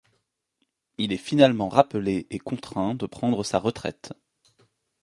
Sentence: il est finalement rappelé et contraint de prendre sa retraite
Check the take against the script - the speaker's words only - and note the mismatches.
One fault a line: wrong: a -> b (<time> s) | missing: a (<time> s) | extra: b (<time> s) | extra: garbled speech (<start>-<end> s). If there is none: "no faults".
no faults